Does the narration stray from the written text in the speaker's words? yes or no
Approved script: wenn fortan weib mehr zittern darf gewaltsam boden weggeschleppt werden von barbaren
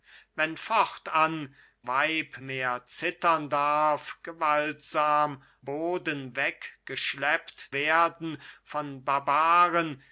no